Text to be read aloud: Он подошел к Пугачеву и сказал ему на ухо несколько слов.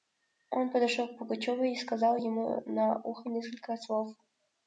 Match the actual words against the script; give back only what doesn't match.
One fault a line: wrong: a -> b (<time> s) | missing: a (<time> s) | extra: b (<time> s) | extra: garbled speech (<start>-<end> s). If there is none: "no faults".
no faults